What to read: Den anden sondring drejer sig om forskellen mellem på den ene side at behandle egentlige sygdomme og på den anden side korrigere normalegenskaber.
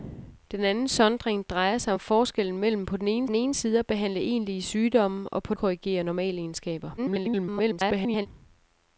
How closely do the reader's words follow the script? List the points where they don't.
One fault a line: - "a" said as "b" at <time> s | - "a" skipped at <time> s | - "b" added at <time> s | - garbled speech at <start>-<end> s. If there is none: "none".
- "den ene" added at 3.2 s
- "den anden side" skipped at 5.5 s
- garbled speech at 7.0-8.3 s